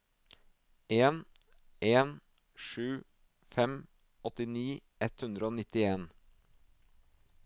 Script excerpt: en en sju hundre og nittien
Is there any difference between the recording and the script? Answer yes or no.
yes